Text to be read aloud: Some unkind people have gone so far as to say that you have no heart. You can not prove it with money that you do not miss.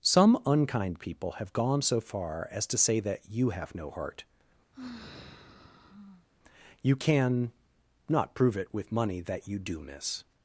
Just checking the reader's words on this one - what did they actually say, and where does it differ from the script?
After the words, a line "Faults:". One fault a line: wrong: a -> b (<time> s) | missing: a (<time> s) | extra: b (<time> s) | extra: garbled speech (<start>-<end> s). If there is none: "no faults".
Some unkind people have gone so far as to say that you have no heart. You can not prove it with money that you do miss.
Faults:
missing: not (9.8 s)